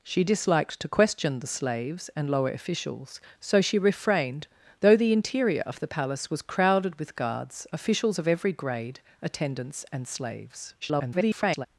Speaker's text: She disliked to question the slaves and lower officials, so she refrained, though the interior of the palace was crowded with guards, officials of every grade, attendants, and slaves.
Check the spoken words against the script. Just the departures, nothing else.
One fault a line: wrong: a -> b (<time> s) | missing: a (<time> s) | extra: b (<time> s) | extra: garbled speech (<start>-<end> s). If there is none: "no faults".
extra: garbled speech (10.8-11.7 s)